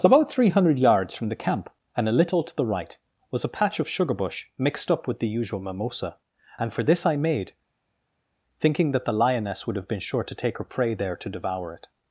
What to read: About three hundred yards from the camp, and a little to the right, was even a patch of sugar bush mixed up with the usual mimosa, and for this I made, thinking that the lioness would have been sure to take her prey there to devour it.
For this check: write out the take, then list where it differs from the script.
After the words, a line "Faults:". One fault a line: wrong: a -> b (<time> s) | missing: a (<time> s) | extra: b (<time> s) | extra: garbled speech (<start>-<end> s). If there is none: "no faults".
About three hundred yards from the camp, and a little to the right, was a patch of sugar bush mixed up with the usual mimosa, and for this I made, thinking that the lioness would have been sure to take her prey there to devour it.
Faults:
missing: even (3.4 s)